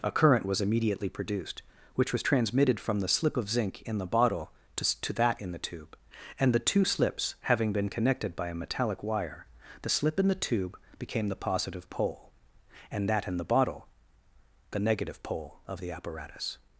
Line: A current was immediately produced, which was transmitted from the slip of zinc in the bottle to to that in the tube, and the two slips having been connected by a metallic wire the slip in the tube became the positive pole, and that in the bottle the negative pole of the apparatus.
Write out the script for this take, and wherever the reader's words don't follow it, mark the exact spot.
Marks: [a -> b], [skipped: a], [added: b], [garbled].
A current was immediately produced, which was transmitted from the slip of zinc in the bottle to to that in the tube, and the two slips having been connected by a metallic wire the slip in the tube became the positive pole, and that in the bottle the negative pole of the apparatus.